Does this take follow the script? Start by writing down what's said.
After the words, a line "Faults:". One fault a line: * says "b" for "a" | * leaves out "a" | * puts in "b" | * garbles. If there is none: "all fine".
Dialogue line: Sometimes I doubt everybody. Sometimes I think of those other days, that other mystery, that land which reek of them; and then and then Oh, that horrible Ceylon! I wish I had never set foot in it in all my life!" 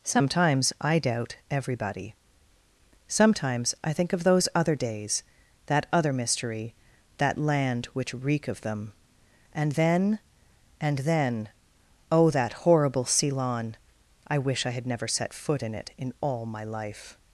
Sometimes I doubt everybody. Sometimes I think of those other days, that other mystery, that land which reek of them; and then and then Oh, that horrible Ceylon! I wish I had never set foot in it in all my life!"
Faults:
all fine